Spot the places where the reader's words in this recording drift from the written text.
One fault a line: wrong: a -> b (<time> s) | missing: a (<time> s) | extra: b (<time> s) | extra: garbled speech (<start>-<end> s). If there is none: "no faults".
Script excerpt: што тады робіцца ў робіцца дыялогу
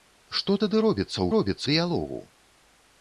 no faults